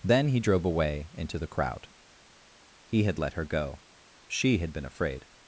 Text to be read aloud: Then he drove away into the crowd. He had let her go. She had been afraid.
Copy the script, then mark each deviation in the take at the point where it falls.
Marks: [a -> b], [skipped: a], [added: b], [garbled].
Then he drove away into the crowd. He had let her go. She had been afraid.